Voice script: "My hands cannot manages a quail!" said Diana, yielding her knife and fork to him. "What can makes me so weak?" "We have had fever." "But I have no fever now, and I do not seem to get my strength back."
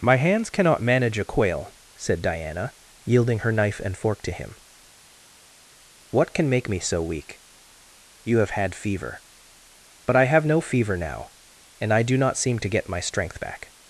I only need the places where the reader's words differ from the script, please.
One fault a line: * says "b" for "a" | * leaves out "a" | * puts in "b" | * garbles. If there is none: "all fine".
* says "manage" for "manages"
* says "make" for "makes"
* says "You" for "We"